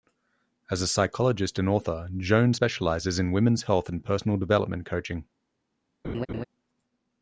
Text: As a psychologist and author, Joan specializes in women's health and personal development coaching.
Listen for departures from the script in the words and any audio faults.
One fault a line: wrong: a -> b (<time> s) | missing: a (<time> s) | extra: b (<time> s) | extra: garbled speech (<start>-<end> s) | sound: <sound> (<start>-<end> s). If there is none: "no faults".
sound: laugh (6.0-6.4 s)